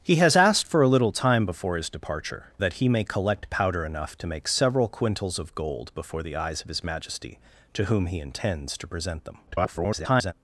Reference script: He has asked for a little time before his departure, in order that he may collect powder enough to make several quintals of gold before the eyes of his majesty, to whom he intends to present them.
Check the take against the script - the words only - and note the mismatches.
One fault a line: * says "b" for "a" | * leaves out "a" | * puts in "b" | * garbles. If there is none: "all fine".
* leaves out "in order"
* garbles